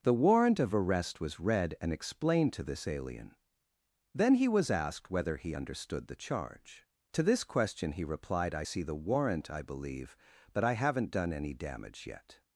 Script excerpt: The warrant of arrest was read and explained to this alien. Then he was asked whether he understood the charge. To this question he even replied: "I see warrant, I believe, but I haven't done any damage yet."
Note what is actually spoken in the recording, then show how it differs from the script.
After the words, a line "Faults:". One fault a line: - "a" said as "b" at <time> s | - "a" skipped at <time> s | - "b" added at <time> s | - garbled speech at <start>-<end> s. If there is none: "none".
The warrant of arrest was read and explained to this alien. Then he was asked whether he understood the charge. To this question he replied: "I see the warrant, I believe, but I haven't done any damage yet."
Faults:
- "even" skipped at 8.1 s
- "the" added at 8.8 s